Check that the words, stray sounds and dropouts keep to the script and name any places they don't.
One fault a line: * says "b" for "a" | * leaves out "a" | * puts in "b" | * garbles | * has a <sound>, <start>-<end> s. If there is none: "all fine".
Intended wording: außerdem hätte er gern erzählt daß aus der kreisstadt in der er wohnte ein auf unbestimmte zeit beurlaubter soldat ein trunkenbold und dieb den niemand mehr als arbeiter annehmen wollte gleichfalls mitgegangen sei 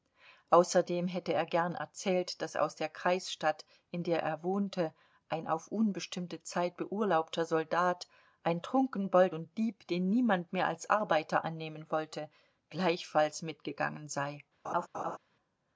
* has a laugh, 14.6-15.2 s